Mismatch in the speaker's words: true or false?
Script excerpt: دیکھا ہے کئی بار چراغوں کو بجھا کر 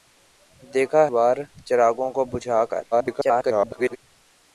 true